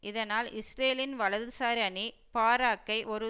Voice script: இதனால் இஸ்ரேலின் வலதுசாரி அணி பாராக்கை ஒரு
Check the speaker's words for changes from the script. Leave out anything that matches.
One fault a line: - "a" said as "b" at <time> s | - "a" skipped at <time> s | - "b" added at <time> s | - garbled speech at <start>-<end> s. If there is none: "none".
none